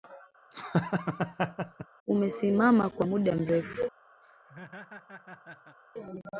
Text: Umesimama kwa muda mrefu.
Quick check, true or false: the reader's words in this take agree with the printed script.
true